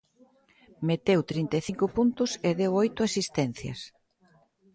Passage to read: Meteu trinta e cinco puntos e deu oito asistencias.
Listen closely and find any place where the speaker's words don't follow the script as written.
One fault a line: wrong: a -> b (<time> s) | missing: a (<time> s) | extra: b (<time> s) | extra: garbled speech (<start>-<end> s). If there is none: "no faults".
no faults